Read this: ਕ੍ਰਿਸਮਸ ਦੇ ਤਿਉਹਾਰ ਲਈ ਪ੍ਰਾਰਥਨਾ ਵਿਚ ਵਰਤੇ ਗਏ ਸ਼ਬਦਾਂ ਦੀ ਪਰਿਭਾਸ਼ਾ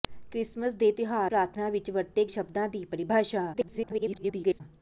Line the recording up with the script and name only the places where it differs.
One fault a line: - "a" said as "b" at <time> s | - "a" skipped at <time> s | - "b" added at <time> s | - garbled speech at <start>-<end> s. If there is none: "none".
- "ਲਈ" skipped at 1.3 s
- "ਗਏ" skipped at 2.3 s
- garbled speech at 3.5-4.6 s